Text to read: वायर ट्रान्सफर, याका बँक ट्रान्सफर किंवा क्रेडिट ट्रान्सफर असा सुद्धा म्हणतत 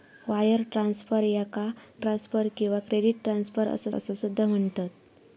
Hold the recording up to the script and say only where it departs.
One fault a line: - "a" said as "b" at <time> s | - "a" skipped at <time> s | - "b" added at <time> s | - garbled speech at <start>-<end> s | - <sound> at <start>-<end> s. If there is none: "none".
- "बँक" skipped at 1.6 s
- "असा" added at 3.9 s